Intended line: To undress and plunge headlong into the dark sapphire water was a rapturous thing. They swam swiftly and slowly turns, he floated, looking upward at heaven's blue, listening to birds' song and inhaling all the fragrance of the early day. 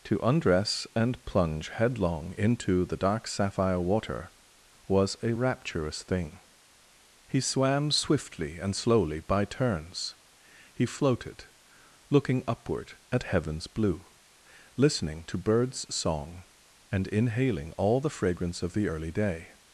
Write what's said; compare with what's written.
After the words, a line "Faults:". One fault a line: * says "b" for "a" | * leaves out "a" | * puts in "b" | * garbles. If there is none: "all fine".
To undress and plunge headlong into the dark sapphire water was a rapturous thing. He swam swiftly and slowly by turns, he floated, looking upward at heaven's blue, listening to birds' song and inhaling all the fragrance of the early day.
Faults:
* says "He" for "They"
* puts in "by"